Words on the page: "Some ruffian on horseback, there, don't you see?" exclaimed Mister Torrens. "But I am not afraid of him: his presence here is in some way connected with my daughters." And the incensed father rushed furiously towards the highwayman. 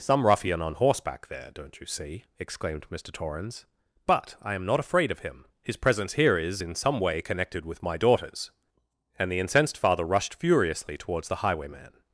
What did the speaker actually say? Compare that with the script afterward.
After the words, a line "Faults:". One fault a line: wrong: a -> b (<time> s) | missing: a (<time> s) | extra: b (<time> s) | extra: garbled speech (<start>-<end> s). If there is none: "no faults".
"Some ruffian on horseback, there, don't you see?" exclaimed Mister Torrens. "But I am not afraid of him: his presence here is in some way connected with my daughters." And the incensed father rushed furiously towards the highwayman.
Faults:
no faults